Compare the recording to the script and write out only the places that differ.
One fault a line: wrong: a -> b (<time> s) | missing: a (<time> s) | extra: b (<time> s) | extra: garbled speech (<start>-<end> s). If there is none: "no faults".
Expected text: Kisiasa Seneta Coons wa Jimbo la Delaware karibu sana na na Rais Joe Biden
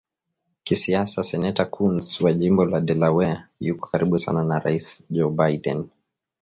extra: yuko (3.6 s)
missing: na (4.6 s)